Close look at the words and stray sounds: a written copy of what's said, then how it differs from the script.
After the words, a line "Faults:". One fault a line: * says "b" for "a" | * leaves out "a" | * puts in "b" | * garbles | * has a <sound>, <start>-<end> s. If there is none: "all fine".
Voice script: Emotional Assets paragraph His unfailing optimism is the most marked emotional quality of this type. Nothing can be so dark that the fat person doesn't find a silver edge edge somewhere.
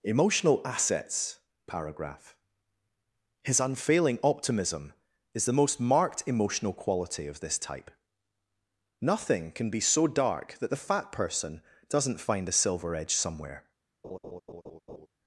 Emotional Assets paragraph His unfailing optimism is the most marked emotional quality of this type. Nothing can be so dark that the fat person doesn't find a silver edge somewhere.
Faults:
* leaves out "edge"
* has a laugh, 14.0-15.1 s